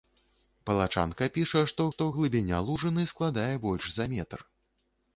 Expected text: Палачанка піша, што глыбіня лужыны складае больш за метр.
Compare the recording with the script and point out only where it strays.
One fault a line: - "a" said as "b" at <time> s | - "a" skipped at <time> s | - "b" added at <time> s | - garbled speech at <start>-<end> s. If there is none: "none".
- "што" added at 1.9 s